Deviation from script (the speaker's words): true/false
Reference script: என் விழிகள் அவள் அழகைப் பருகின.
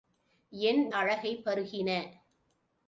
true